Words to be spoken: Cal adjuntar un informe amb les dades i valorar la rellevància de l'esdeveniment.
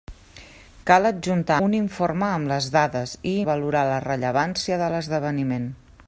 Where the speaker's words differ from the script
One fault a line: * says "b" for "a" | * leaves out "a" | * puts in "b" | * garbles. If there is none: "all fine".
all fine